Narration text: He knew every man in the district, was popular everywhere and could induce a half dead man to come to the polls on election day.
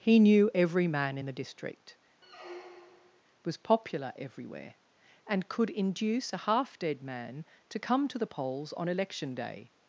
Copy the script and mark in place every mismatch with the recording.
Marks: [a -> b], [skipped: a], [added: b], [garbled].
He knew every man in the district, was popular everywhere and could induce a half dead man to come to the polls on election day.